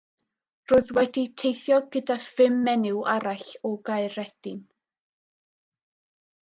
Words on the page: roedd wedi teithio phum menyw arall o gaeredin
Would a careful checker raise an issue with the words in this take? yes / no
yes